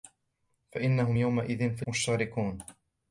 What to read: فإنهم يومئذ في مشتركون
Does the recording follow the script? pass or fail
pass